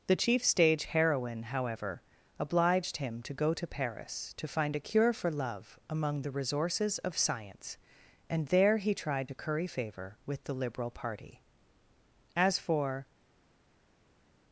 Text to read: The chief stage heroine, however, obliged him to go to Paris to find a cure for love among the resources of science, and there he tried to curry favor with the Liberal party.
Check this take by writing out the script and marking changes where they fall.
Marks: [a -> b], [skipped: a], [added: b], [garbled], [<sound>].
The chief stage heroine, however, obliged him to go to Paris to find a cure for love among the resources of science, and there he tried to curry favor with the Liberal party. [added: As for]